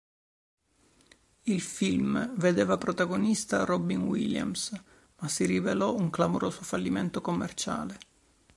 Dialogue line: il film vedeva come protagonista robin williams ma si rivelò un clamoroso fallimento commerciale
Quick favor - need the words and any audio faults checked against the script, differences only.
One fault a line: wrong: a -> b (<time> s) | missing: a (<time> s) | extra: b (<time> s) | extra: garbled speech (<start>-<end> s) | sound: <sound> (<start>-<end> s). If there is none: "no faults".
missing: come (2.8 s)